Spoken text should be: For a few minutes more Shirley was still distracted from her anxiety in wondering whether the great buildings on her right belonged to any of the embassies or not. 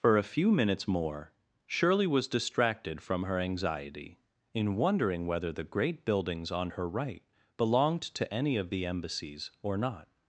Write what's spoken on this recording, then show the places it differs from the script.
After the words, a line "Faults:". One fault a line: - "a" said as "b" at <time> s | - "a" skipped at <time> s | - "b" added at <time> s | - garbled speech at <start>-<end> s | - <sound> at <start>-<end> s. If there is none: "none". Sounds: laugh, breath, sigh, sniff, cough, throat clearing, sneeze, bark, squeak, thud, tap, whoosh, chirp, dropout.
For a few minutes more Shirley was distracted from her anxiety in wondering whether the great buildings on her right belonged to any of the embassies or not.
Faults:
- "still" skipped at 2.3 s